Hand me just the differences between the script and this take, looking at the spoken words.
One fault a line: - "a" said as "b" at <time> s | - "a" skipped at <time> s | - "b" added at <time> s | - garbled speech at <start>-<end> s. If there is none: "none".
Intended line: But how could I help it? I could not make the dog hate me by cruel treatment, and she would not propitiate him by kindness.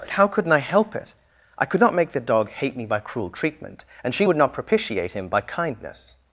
- "could" said as "couldn't" at 0.3 s